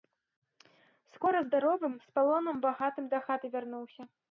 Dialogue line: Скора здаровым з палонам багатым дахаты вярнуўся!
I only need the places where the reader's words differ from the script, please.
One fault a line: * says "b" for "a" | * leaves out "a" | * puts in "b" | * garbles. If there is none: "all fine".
all fine